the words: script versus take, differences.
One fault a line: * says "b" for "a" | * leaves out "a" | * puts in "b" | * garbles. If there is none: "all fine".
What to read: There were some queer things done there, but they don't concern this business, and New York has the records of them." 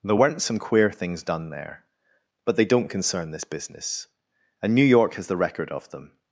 * says "weren't" for "were"
* says "record" for "records"